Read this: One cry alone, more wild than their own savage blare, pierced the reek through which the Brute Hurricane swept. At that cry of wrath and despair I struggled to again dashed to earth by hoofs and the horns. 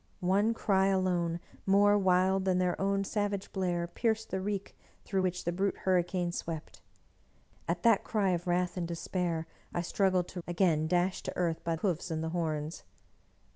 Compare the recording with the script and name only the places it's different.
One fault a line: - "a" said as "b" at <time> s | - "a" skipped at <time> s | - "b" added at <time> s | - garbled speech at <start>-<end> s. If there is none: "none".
none